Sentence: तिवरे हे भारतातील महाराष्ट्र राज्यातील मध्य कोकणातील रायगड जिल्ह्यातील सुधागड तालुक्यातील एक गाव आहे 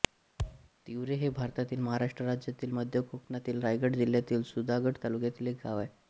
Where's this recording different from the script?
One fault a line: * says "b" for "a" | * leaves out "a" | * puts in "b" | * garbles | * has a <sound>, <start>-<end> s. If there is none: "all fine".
* has a thud, 0.4-0.7 s